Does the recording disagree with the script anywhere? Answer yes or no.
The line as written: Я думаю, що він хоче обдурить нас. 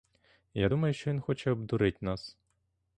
no